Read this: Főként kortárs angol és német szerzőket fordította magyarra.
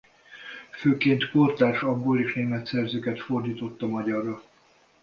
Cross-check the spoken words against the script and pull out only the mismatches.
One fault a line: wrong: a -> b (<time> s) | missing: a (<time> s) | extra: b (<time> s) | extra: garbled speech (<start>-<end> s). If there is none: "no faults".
no faults